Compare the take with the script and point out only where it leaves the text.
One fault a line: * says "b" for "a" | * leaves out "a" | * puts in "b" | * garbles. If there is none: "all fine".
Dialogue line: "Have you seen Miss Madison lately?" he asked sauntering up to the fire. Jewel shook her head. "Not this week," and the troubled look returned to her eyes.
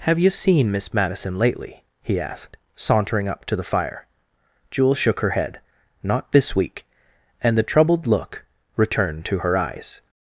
all fine